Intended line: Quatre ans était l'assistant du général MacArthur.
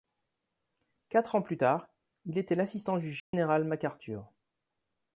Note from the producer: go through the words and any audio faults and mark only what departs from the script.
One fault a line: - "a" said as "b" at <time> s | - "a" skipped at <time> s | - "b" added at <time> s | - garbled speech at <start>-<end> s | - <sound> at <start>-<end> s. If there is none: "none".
- "plus tard il" added at 1.4 s
- dropout at 3.2-3.3 s